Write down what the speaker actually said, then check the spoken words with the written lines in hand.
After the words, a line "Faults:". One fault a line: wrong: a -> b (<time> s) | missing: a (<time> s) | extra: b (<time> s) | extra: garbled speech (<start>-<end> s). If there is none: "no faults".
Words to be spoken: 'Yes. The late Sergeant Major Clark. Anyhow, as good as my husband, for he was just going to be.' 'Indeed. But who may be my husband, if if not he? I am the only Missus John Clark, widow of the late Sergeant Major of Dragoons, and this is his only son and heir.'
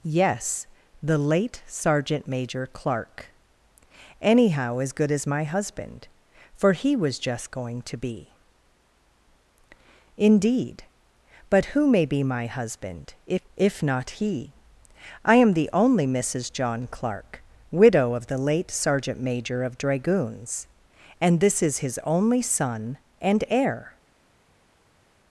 'Yes. The late Sergeant Major Clark. Anyhow, as good as my husband, for he was just going to be.' 'Indeed. But who may be my husband, if if not he? I am the only Missus John Clark, widow of the late Sergeant Major of Dragoons, and this is his only son and heir.'
Faults:
no faults